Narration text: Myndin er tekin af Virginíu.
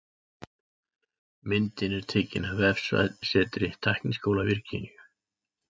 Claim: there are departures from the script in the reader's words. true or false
true